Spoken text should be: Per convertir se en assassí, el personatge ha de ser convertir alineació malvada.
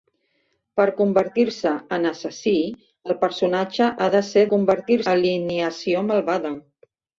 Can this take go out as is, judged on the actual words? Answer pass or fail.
pass